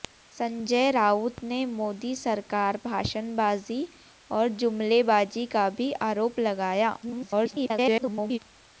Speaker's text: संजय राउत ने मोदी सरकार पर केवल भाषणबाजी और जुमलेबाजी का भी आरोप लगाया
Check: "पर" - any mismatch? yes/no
yes